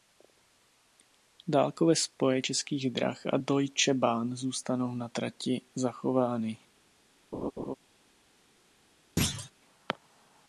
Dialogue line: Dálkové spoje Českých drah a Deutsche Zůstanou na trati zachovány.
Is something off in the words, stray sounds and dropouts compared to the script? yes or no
yes